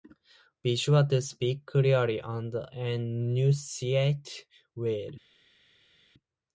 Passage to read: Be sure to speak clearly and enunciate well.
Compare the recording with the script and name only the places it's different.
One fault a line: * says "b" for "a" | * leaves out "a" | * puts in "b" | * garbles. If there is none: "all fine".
all fine